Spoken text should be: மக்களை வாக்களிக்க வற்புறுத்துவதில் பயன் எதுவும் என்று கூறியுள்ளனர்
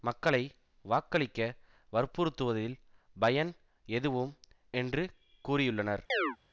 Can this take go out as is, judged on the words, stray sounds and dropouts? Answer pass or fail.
fail